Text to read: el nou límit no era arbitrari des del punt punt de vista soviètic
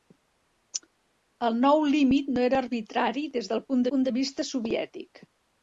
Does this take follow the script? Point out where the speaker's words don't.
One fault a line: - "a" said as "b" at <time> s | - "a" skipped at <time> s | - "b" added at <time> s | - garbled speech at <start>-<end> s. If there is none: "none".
none